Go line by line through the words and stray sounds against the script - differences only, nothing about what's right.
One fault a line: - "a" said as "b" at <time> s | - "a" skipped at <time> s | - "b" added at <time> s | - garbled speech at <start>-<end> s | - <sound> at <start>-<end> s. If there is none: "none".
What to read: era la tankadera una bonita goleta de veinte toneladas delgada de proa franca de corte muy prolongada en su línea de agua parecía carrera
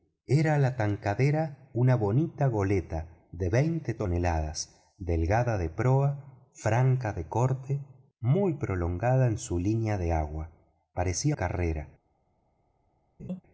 - laugh at 13.2-13.4 s